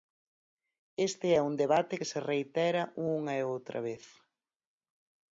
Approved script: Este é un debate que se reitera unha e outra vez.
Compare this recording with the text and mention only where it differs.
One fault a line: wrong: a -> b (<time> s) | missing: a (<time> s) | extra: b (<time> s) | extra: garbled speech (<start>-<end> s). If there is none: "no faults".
no faults